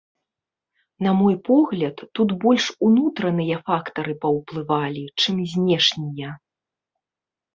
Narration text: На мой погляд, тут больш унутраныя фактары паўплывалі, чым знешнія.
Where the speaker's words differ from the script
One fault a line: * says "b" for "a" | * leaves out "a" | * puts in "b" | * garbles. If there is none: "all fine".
all fine